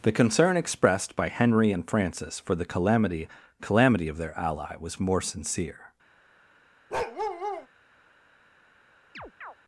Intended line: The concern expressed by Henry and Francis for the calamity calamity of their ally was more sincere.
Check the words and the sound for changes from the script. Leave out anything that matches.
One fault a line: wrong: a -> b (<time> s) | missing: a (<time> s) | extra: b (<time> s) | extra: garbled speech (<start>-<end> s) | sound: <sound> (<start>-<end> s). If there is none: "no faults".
sound: bark (6.9-7.7 s)
sound: chirp (9.1-9.6 s)